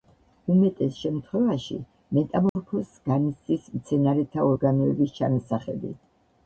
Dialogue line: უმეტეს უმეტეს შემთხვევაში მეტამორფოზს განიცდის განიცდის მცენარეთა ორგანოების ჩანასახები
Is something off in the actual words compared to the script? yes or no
yes